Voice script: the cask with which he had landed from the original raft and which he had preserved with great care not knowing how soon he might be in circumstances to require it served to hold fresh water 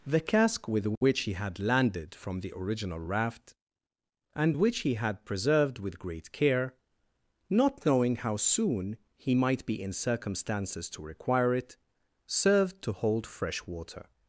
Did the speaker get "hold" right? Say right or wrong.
right